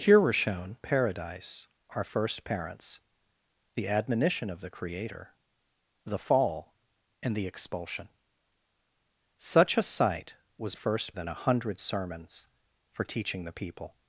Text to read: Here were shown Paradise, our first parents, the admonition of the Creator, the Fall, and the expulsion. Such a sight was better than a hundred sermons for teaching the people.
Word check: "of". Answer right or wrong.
right